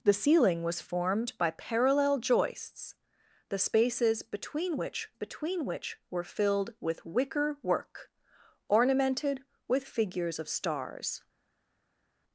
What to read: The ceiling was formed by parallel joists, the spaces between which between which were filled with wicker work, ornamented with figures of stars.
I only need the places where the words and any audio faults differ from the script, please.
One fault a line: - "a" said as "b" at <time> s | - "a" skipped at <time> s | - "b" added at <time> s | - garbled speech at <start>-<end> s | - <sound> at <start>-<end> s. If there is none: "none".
none